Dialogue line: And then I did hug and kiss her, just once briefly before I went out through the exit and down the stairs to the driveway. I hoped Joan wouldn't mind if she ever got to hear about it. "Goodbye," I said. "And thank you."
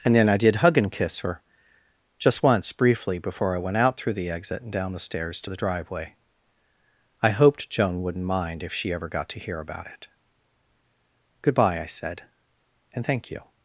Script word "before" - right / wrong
right